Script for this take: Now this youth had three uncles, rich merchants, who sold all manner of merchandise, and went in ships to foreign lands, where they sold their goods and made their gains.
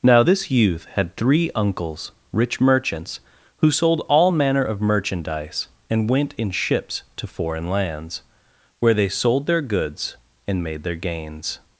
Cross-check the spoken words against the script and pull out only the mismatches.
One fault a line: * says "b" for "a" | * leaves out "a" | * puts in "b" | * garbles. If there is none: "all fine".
all fine